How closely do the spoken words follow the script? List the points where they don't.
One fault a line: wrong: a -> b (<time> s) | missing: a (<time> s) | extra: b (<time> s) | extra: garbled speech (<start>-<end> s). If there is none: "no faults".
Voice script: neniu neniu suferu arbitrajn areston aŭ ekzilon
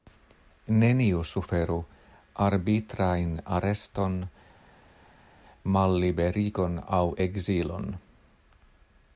missing: neniu (1.2 s)
extra: malliberigon (5.8 s)